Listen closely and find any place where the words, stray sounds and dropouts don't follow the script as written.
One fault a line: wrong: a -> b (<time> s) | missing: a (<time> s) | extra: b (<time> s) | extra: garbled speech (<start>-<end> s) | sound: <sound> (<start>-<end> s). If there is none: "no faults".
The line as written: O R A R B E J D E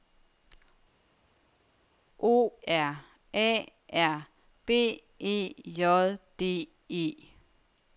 no faults